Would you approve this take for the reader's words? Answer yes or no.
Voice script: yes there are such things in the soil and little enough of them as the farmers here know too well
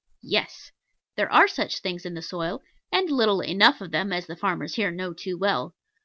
yes